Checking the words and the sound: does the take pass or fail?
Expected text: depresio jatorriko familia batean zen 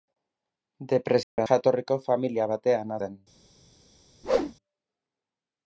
fail